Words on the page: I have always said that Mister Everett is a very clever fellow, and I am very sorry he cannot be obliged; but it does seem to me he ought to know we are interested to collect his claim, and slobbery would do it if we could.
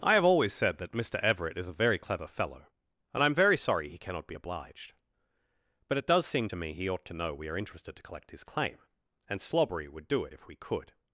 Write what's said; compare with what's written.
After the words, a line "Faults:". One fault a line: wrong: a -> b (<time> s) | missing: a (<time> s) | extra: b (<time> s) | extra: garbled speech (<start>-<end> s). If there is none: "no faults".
I have always said that Mister Everett is a very clever fellow, and I am very sorry he cannot be obliged; but it does seem to me he ought to know we are interested to collect his claim, and slobbery would do it if we could.
Faults:
no faults